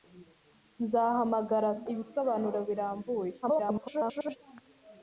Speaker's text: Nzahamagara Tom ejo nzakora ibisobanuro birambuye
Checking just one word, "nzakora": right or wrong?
wrong